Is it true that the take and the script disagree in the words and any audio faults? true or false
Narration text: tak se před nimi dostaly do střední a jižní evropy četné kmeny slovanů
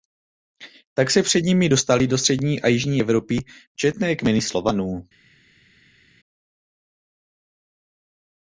false